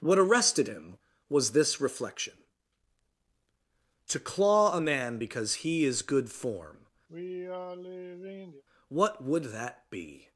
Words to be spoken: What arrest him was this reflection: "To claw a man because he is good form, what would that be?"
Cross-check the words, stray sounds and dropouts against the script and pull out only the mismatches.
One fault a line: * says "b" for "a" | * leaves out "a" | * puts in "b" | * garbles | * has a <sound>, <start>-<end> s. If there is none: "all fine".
* says "arrested" for "arrest"
* has a sigh, 7.1-8.6 s